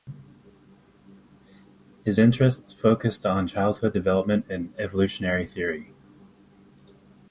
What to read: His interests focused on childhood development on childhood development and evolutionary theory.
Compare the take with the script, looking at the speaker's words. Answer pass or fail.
fail